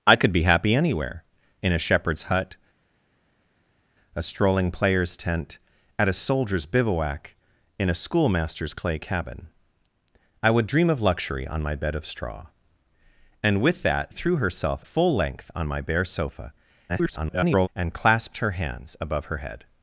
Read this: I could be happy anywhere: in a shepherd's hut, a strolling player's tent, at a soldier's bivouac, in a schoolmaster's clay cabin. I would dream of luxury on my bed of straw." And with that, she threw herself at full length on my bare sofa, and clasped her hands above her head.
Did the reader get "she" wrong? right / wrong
wrong